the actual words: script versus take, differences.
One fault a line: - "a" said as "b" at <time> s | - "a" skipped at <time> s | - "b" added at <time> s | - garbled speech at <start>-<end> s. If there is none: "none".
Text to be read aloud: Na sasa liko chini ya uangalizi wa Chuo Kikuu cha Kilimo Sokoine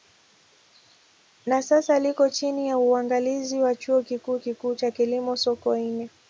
- "Kikuu" added at 4.4 s